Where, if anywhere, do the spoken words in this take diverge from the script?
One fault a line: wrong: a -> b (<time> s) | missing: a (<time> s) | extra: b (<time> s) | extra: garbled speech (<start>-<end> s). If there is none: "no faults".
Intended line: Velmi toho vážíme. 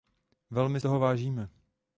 no faults